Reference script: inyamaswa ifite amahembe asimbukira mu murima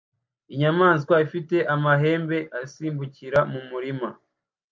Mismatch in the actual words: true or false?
false